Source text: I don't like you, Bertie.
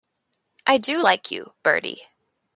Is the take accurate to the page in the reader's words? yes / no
no